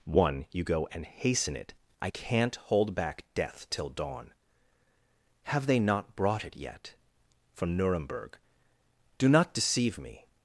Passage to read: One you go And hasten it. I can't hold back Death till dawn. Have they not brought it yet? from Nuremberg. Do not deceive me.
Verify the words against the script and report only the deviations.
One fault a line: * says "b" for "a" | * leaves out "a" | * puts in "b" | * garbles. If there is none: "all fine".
all fine